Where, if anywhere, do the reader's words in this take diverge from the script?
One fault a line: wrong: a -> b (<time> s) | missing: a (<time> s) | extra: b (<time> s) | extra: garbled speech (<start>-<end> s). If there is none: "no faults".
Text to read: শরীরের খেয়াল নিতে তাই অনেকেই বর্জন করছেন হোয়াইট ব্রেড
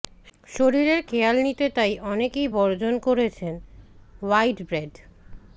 no faults